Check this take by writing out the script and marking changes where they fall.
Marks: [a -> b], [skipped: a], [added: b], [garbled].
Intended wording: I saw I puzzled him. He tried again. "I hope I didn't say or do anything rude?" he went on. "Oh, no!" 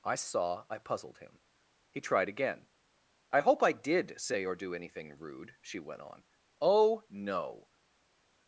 I saw I puzzled him. He tried again. "I hope I [didn't -> did] say or do anything rude?" [he -> she] went on. "Oh, no!"